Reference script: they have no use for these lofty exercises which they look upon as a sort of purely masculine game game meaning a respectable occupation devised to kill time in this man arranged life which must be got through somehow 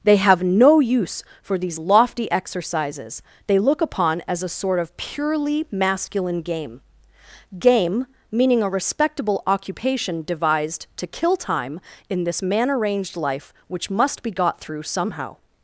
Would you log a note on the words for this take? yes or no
yes